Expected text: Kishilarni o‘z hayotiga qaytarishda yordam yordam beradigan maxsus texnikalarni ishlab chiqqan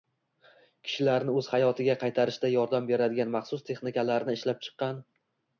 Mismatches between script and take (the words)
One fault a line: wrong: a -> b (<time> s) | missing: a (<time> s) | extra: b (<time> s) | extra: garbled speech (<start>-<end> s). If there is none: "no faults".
missing: yordam (2.9 s)